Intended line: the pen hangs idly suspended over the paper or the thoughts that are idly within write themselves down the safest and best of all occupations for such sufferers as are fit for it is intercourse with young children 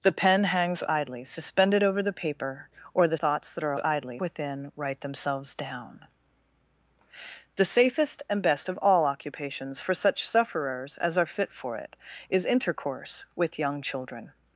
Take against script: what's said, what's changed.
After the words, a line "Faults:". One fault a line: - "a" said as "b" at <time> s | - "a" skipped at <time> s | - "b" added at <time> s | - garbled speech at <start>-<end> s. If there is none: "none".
the pen hangs idly suspended over the paper or the thoughts that are idly within write themselves down the safest and best of all occupations for such sufferers as are fit for it is intercourse with young children
Faults:
none